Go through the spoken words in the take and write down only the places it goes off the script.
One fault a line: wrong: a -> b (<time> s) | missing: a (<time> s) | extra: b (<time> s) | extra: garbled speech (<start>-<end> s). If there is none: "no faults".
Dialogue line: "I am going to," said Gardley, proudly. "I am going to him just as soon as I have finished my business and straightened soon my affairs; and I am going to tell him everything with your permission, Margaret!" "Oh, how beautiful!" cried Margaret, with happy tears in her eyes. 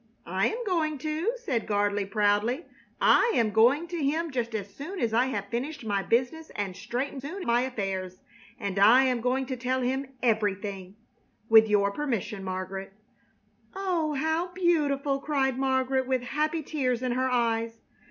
no faults